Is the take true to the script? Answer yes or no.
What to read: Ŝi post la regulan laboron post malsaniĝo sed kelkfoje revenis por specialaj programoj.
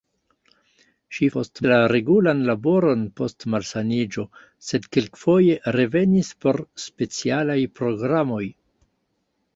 yes